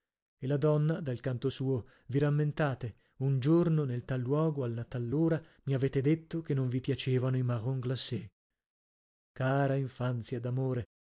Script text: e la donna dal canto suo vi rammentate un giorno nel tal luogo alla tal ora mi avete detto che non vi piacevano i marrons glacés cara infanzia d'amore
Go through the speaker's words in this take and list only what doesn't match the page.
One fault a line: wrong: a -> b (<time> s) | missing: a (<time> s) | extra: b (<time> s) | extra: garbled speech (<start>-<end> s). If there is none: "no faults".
no faults